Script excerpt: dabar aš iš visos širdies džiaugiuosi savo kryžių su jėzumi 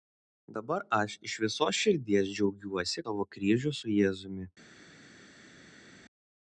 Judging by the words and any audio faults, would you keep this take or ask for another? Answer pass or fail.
pass